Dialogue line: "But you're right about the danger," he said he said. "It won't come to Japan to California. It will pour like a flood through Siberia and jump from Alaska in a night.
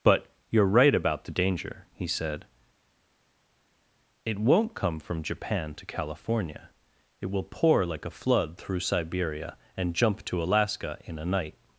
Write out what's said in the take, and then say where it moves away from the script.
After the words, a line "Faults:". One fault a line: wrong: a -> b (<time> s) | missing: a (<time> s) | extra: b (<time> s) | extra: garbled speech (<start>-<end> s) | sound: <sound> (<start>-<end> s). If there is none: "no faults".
"But you're right about the danger," he said. "It won't come from Japan to California. It will pour like a flood through Siberia and jump to Alaska in a night.
Faults:
missing: he said (2.5 s)
wrong: to -> from (5.0 s)
wrong: from -> to (10.3 s)